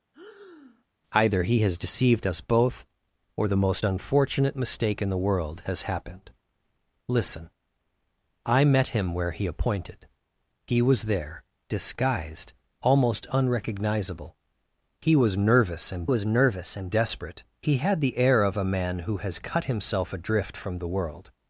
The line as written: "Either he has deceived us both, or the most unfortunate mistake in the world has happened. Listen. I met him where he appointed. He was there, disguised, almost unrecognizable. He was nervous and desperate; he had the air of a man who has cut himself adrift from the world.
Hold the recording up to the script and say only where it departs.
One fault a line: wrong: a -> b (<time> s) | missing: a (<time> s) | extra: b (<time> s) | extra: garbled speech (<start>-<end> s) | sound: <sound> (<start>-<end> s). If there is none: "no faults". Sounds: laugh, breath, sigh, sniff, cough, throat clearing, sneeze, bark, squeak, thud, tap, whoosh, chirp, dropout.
sound: breath (0.1-0.8 s)
extra: was nervous and (16.0 s)